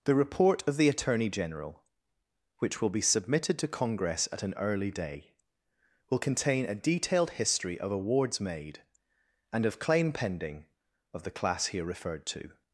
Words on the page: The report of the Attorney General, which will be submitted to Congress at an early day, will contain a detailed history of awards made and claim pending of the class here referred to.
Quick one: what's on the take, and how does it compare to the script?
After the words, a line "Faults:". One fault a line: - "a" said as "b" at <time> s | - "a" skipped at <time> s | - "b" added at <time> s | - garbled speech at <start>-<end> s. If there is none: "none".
The report of the Attorney General, which will be submitted to Congress at an early day, will contain a detailed history of awards made and of claim pending of the class here referred to.
Faults:
- "of" added at 9.7 s